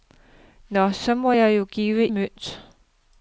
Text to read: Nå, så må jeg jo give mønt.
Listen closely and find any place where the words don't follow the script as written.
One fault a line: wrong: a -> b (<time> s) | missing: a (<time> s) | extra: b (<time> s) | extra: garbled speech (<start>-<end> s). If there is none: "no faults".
no faults